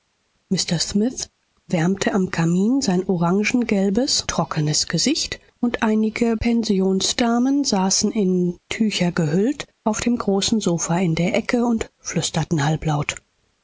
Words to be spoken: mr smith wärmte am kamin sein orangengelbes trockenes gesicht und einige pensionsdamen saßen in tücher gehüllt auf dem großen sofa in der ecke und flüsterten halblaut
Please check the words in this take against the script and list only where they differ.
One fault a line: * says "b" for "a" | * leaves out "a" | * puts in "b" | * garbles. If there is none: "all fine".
all fine